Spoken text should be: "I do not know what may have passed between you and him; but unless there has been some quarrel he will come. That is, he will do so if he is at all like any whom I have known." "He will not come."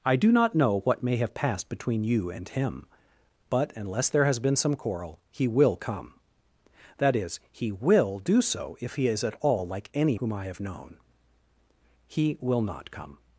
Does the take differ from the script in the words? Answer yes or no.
no